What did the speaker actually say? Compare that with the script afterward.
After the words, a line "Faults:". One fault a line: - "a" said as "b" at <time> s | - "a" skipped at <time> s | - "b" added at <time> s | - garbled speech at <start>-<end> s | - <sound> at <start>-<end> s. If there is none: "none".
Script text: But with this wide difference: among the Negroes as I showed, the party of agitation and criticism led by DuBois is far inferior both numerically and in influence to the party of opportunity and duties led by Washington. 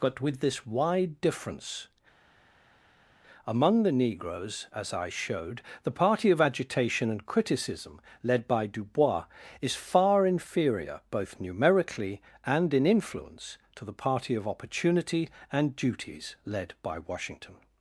But with this wide difference: among the Negroes as I showed, the party of agitation and criticism led by DuBois is far inferior both numerically and in influence to the party of opportunity and duties led by Washington.
Faults:
none